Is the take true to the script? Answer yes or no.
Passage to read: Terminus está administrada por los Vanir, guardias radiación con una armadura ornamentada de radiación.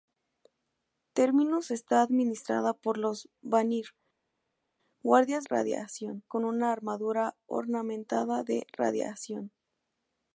yes